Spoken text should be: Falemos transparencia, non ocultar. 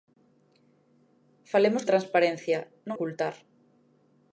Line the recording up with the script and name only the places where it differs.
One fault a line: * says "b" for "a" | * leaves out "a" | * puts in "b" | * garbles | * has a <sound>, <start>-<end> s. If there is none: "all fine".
all fine